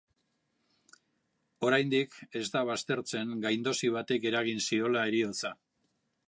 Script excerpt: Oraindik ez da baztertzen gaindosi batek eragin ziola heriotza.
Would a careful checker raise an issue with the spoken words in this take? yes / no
no